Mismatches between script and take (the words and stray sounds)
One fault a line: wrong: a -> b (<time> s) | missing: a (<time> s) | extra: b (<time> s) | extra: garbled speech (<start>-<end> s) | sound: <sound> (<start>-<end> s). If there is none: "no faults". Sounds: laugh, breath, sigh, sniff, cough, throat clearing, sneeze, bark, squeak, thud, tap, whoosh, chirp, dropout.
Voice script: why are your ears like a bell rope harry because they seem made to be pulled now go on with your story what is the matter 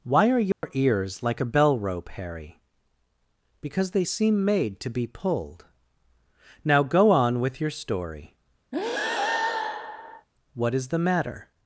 sound: dropout (0.5-0.6 s)
sound: breath (8.7-10.3 s)